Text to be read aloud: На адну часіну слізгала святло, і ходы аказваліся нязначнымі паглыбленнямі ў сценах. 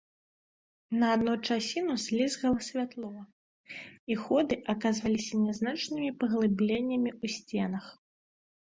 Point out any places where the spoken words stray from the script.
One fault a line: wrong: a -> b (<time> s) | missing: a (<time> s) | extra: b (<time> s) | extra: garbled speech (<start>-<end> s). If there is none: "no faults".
no faults